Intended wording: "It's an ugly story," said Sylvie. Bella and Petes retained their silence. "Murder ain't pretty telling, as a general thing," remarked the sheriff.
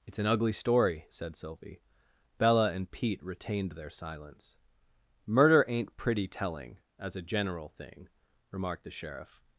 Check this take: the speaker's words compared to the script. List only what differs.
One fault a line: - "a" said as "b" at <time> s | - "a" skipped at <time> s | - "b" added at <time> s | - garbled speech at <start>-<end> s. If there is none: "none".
- "Petes" said as "Pete" at 2.9 s